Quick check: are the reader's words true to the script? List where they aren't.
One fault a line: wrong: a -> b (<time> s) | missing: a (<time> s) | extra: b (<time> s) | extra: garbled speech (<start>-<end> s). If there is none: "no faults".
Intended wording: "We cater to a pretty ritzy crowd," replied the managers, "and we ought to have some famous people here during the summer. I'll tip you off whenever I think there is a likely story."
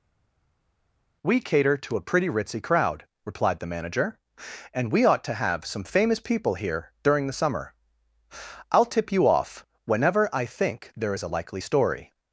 wrong: managers -> manager (3.7 s)